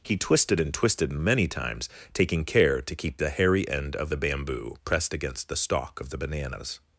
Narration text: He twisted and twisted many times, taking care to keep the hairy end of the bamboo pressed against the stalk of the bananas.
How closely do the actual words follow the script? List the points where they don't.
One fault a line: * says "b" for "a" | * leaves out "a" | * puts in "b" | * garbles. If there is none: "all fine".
all fine